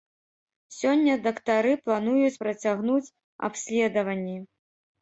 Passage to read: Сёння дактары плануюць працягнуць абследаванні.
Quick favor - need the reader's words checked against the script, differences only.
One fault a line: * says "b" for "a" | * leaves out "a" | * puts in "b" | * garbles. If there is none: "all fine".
all fine